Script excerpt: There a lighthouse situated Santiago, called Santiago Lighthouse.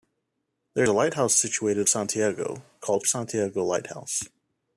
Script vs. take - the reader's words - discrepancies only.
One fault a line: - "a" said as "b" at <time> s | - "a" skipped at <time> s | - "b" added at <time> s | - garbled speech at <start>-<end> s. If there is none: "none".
none